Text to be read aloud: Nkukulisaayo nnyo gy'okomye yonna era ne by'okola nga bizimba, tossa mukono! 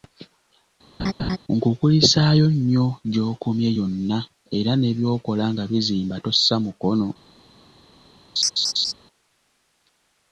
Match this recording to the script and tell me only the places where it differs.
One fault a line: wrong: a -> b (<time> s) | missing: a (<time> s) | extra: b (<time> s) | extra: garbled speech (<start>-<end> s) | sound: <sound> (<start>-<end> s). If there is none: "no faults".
sound: laugh (1.0-1.4 s)
sound: laugh (8.4-8.9 s)